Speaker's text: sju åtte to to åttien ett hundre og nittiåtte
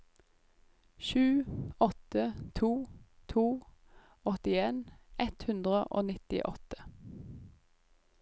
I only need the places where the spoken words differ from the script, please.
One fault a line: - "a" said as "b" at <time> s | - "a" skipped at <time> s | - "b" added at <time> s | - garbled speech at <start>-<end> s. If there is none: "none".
none